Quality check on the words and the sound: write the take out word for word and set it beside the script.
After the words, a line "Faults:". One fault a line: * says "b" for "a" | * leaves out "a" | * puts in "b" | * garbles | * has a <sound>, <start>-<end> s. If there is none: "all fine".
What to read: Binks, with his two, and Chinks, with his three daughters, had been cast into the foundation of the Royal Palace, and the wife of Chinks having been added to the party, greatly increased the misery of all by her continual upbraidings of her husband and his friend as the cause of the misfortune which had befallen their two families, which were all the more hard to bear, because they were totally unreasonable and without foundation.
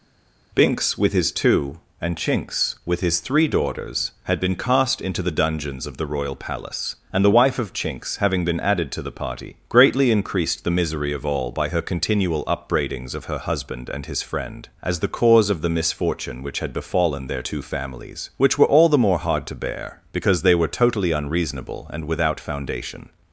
Binks, with his two, and Chinks, with his three daughters, had been cast into the dungeons of the Royal Palace, and the wife of Chinks having been added to the party, greatly increased the misery of all by her continual upbraidings of her husband and his friend as the cause of the misfortune which had befallen their two families, which were all the more hard to bear, because they were totally unreasonable and without foundation.
Faults:
* says "dungeons" for "foundation"